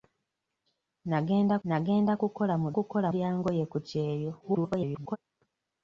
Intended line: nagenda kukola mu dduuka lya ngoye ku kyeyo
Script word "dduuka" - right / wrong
wrong